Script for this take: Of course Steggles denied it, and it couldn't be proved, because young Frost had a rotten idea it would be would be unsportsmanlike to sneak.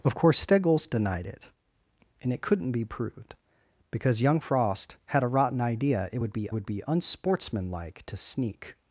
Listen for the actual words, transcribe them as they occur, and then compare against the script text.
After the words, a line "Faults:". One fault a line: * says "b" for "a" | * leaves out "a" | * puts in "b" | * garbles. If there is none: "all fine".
Of course Steggles denied it, and it couldn't be proved, because young Frost had a rotten idea it would be would be unsportsmanlike to sneak.
Faults:
all fine